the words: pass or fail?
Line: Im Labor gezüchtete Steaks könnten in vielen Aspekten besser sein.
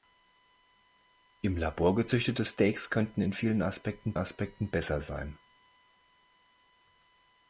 fail